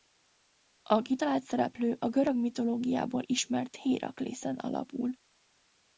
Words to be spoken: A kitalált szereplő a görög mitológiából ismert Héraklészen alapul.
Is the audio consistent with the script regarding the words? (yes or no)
yes